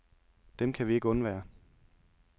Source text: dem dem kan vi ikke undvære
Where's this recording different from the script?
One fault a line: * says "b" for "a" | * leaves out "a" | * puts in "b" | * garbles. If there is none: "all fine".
* leaves out "dem"